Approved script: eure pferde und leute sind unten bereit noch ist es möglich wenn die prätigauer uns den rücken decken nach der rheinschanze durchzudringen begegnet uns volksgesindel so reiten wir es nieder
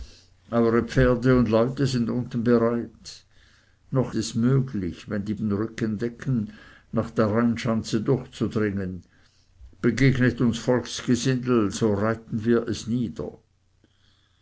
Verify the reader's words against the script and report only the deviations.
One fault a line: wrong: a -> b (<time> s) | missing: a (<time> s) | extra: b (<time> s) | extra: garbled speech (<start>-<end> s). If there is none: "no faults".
missing: ist (4.2 s)
missing: prätigauer uns (5.3 s)